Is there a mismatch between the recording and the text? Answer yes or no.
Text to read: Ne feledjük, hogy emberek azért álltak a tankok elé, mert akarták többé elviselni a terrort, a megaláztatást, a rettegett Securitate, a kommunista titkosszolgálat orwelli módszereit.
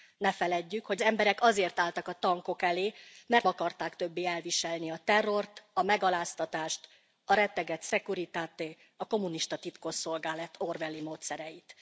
no